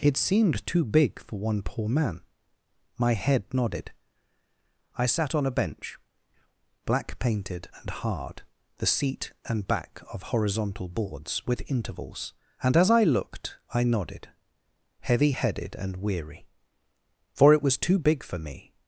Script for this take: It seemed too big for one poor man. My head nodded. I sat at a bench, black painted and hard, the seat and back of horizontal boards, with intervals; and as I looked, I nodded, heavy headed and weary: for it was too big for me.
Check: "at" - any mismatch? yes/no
yes